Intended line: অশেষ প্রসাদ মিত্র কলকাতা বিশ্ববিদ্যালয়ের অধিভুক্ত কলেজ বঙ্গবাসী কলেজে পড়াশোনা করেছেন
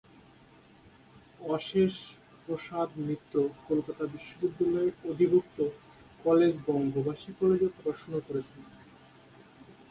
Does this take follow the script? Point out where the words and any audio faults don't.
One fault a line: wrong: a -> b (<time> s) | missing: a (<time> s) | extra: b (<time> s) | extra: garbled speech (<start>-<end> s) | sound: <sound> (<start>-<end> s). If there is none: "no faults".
no faults